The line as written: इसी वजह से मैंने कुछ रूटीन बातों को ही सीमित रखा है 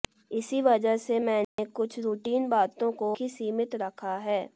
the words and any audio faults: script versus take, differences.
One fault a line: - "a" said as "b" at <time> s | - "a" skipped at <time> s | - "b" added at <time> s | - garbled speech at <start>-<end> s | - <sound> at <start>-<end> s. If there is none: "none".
- dropout at 1.4-1.6 s